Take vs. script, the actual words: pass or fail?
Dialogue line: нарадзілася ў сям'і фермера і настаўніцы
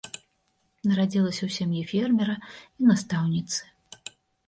pass